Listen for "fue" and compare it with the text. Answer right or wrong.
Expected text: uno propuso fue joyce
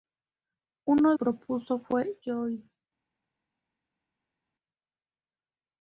right